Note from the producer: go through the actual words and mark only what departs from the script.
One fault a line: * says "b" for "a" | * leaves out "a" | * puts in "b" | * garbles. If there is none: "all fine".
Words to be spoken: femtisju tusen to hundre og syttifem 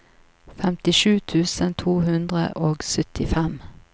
all fine